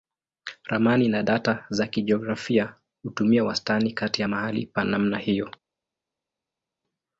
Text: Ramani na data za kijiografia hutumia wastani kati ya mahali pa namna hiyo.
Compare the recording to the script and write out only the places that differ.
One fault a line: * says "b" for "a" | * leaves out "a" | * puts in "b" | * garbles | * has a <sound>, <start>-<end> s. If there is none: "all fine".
all fine